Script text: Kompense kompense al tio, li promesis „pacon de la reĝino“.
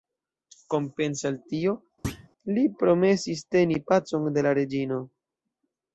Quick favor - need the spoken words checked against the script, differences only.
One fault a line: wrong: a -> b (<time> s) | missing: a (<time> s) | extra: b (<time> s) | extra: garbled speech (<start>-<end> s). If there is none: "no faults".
missing: kompense (1.3 s)
extra: teni (3.6 s)